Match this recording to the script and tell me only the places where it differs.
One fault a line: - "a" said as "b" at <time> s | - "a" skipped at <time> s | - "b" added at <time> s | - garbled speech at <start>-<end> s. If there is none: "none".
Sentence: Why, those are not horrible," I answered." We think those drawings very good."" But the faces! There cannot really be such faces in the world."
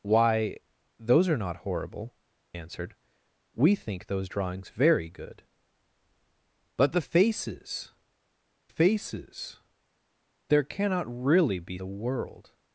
- "I" skipped at 2.1 s
- "faces" added at 8.7 s
- "such faces in" skipped at 11.8 s